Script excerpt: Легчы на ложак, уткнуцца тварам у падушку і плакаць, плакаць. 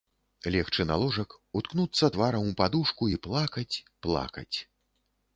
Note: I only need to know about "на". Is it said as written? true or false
true